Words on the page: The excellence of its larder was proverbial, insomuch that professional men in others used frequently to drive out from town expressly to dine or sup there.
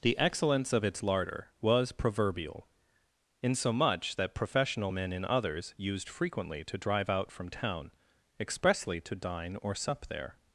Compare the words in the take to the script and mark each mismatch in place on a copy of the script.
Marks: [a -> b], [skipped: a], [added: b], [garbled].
The excellence of its larder was proverbial, insomuch that professional men in others used frequently to drive out from town expressly to dine or sup there.